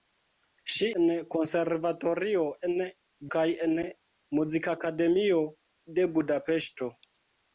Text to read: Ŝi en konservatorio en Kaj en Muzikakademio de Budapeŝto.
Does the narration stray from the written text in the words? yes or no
no